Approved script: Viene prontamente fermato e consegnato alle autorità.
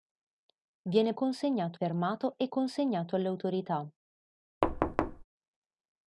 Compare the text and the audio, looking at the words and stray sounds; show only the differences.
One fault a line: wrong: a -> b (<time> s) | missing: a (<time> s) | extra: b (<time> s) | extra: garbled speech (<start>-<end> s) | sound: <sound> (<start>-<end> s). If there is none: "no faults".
wrong: prontamente -> consegnato (1.1 s)
sound: thud (4.6-5.2 s)